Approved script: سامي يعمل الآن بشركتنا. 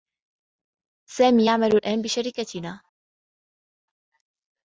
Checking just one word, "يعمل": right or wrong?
right